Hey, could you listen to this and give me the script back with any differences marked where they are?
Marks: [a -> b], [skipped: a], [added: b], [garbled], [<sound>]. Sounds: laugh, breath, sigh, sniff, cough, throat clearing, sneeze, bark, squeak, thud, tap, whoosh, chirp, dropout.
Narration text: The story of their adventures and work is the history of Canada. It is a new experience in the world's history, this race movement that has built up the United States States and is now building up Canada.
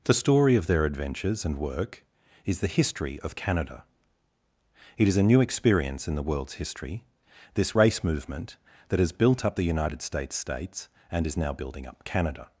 The story of their adventures and work is the history of Canada. It is a new experience in the world's history, this race movement that has built up the United States States and is now building up Canada.